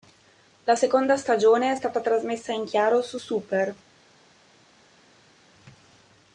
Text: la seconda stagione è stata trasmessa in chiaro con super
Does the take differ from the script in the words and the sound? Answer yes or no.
yes